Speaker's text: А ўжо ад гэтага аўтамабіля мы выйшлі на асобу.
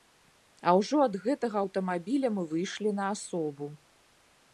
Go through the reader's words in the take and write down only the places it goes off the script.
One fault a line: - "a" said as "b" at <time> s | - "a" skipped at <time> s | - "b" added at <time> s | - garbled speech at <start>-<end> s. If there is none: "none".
none